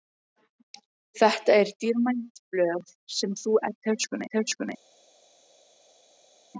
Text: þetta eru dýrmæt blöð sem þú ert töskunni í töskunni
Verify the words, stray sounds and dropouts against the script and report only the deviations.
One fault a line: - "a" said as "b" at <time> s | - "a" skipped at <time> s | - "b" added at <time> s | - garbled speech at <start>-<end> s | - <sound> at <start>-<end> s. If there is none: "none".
none